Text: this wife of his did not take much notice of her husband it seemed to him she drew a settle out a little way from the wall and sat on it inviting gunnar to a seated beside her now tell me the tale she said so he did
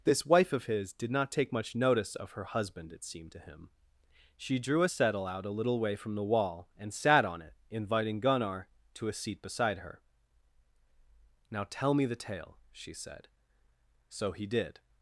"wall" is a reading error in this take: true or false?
false